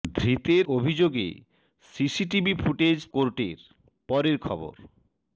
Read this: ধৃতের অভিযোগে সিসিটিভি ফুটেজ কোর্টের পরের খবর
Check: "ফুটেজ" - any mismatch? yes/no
no